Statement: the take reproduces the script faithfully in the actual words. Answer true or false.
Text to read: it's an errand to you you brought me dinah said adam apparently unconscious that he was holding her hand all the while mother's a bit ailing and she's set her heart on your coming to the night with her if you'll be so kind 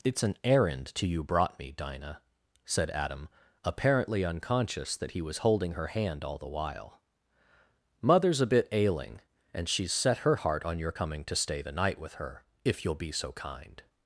false